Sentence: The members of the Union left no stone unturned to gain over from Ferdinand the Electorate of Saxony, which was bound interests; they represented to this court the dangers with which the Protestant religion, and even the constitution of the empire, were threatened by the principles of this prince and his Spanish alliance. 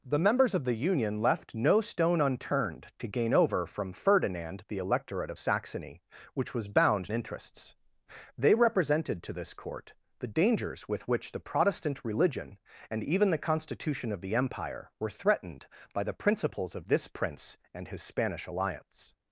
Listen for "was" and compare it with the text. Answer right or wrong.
right